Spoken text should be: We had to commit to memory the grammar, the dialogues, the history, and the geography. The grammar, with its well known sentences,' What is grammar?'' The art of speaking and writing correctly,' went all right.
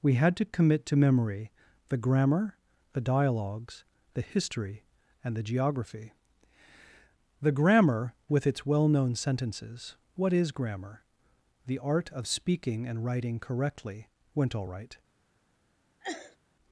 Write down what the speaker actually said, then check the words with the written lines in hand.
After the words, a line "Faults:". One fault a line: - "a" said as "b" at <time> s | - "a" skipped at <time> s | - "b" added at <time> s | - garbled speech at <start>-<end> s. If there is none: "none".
We had to commit to memory the grammar, the dialogues, the history, and the geography. The grammar, with its well known sentences,' What is grammar?'' The art of speaking and writing correctly,' went all right.
Faults:
none